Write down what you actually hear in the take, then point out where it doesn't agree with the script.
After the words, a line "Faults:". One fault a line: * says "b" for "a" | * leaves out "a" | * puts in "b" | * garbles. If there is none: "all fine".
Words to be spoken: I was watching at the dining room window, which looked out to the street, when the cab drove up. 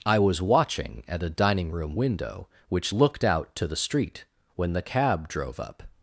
I was watching at a dining room window, which looked out to the street, when the cab drove up.
Faults:
* says "a" for "the"